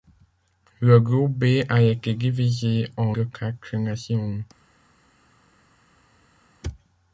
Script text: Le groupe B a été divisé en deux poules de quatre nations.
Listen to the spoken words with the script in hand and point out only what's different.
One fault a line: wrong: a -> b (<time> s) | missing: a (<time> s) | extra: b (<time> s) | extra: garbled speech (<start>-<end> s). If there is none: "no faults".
missing: deux poules (3.2 s)